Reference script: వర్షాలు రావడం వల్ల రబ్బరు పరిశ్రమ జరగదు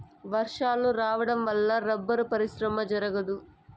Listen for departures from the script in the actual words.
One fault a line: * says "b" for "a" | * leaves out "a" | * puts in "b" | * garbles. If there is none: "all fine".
all fine